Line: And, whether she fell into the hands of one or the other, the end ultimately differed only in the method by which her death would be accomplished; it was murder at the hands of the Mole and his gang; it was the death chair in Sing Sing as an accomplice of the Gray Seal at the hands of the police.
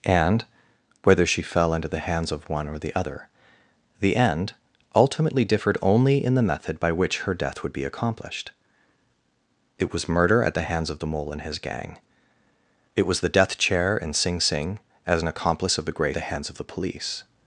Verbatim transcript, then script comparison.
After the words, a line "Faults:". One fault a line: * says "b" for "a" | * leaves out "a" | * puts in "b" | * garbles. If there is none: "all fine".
And, whether she fell into the hands of one or the other, the end ultimately differed only in the method by which her death would be accomplished; it was murder at the hands of the Mole and his gang; it was the death chair in Sing Sing as an accomplice of the Gray The hands of the police.
Faults:
* leaves out "Seal at"